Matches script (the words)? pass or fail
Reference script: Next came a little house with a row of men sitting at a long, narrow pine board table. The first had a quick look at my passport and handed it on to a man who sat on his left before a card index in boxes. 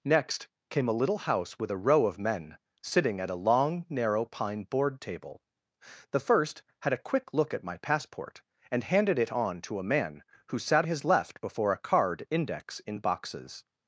fail